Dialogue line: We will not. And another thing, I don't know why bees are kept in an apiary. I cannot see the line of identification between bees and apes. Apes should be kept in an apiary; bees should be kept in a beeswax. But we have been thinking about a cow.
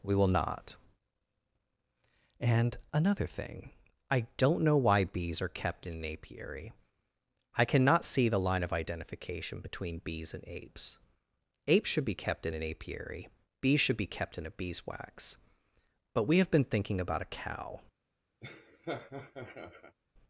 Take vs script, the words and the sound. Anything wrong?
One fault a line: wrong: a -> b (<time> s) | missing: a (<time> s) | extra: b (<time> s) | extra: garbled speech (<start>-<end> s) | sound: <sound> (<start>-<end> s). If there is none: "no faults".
sound: laugh (18.4-20.0 s)